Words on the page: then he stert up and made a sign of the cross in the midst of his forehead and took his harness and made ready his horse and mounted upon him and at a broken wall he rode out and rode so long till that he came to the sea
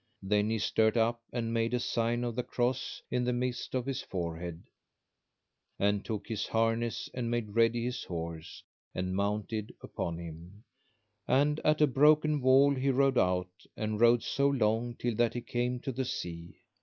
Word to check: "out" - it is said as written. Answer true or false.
true